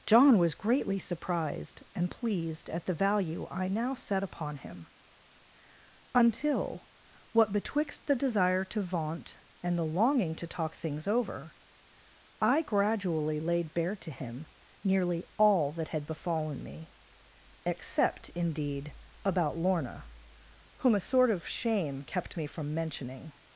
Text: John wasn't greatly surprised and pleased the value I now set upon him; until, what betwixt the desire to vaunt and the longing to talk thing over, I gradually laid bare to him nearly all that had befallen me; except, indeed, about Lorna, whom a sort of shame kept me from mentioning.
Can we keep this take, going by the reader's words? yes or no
no